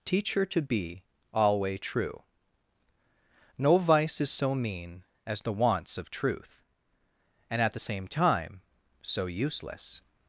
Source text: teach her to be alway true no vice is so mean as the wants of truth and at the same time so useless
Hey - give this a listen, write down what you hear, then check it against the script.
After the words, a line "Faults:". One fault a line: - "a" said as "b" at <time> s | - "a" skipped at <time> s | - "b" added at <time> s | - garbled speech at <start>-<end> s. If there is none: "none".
teach her to be alway true no vice is so mean as the wants of truth and at the same time so useless
Faults:
none